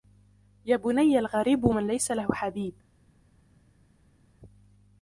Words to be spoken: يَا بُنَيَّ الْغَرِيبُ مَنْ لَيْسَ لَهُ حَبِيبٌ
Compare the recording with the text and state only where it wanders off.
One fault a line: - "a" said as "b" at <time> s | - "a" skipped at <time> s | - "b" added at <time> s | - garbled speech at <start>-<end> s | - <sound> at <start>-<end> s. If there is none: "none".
none